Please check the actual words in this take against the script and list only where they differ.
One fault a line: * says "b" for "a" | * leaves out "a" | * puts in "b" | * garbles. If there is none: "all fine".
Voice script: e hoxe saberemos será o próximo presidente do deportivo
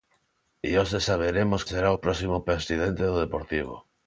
all fine